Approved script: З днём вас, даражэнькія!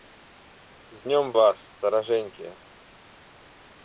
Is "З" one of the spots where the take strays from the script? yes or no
no